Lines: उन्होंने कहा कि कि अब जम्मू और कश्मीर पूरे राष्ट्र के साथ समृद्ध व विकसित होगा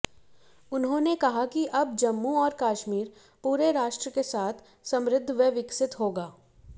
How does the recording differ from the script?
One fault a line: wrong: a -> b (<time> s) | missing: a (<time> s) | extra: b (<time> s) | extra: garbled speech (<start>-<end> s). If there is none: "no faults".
missing: कि (1.6 s)